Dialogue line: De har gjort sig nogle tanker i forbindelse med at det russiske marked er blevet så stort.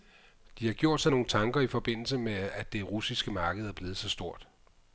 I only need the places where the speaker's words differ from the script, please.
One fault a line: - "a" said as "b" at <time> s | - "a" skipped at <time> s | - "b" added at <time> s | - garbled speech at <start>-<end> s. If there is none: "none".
none